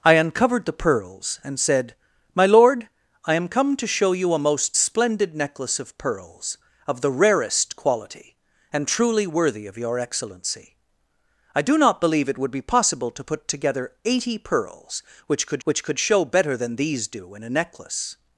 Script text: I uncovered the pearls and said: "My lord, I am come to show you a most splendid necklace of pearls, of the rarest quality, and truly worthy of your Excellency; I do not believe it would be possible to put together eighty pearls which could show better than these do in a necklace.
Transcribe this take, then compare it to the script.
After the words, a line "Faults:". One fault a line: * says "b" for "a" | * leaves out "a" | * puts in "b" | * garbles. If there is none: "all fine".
I uncovered the pearls and said: "My lord, I am come to show you a most splendid necklace of pearls, of the rarest quality, and truly worthy of your Excellency; I do not believe it would be possible to put together eighty pearls which could which could show better than these do in a necklace.
Faults:
* puts in "which could"